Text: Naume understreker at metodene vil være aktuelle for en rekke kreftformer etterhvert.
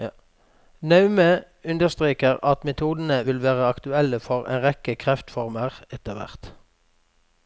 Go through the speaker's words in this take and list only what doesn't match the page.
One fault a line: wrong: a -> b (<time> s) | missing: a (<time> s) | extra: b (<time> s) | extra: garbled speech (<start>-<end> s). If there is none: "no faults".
no faults